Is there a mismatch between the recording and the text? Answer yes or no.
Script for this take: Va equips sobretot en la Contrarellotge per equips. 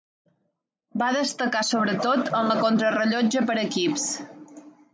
yes